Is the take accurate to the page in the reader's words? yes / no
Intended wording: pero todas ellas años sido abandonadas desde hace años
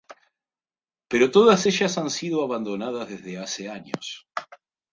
no